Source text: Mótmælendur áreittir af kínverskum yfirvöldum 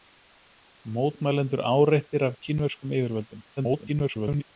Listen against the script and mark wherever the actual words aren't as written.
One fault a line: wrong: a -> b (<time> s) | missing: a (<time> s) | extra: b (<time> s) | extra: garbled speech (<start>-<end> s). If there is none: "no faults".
extra: garbled speech (3.6-4.4 s)